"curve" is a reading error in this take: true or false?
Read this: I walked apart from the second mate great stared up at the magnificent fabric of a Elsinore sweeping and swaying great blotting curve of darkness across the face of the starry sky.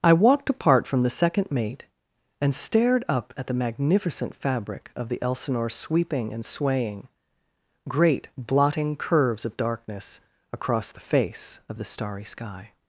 true